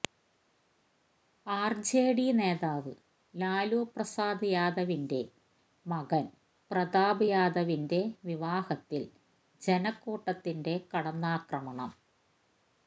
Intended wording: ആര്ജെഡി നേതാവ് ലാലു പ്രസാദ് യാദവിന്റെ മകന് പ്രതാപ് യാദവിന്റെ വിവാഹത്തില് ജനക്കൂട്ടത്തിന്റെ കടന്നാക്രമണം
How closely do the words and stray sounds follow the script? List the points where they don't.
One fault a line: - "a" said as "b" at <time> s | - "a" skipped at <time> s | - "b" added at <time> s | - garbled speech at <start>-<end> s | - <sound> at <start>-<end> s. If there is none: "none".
none